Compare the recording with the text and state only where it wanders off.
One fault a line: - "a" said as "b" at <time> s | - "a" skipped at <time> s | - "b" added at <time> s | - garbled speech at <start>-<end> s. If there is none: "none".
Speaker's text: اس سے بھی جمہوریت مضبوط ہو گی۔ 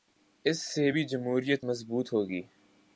none